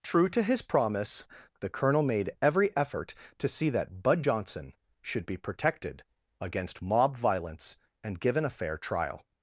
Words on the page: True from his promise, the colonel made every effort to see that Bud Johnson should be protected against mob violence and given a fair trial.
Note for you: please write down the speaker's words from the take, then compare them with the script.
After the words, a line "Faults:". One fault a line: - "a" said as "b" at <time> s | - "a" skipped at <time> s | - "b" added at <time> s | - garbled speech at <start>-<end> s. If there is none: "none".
True to his promise, the colonel made every effort to see that Bud Johnson should be protected against mob violence and given a fair trial.
Faults:
- "from" said as "to" at 0.3 s